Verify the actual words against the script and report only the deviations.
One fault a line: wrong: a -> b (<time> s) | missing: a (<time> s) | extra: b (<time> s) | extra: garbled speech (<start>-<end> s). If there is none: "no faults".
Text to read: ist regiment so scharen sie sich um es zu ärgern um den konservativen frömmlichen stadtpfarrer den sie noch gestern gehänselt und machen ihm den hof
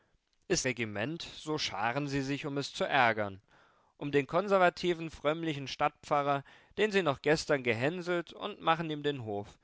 no faults